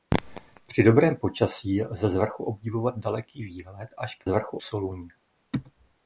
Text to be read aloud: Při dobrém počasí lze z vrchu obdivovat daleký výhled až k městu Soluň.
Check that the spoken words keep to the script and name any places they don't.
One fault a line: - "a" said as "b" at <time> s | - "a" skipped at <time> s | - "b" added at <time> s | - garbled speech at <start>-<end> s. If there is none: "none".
- "městu" said as "vrchu" at 4.3 s